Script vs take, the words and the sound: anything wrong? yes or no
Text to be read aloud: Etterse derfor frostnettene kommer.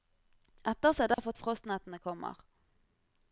yes